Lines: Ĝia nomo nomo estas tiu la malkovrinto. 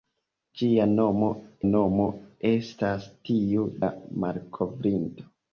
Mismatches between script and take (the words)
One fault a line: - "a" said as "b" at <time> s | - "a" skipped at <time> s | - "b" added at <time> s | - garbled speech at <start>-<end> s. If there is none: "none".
none